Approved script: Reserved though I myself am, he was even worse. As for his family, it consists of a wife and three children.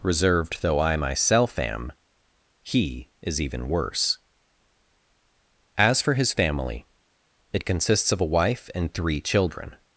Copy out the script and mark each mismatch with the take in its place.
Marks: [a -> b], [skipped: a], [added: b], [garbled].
Reserved though I myself am, he [was -> is] even worse. As for his family, it consists of a wife and three children.